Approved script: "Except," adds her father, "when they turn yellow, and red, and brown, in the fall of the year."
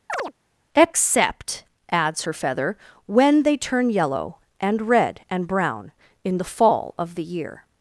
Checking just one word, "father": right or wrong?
wrong